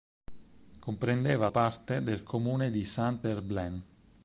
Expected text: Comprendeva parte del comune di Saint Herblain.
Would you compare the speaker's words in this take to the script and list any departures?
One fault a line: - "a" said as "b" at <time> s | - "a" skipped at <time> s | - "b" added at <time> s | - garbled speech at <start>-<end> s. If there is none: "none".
none